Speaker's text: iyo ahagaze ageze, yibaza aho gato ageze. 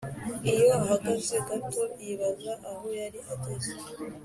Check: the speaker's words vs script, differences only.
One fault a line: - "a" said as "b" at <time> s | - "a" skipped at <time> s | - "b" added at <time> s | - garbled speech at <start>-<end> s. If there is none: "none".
- "ageze" said as "gato" at 1.5 s
- "gato" said as "yari" at 3.0 s